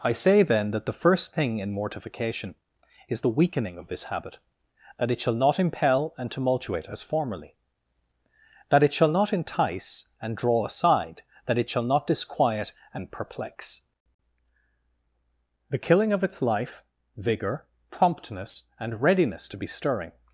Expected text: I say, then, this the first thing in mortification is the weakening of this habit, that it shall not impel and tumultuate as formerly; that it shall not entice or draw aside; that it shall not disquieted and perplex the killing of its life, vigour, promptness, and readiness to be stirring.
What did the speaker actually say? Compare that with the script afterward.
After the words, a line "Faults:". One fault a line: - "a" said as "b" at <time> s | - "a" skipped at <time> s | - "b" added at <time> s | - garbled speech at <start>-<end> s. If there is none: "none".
I say, then, that the first thing in mortification is the weakening of this habit, that it shall not impel and tumultuate as formerly; that it shall not entice and draw aside; that it shall not disquiet and perplex the killing of its life, vigour, promptness, and readiness to be stirring.
Faults:
- "this" said as "that" at 0.7 s
- "or" said as "and" at 10.2 s
- "disquieted" said as "disquiet" at 12.1 s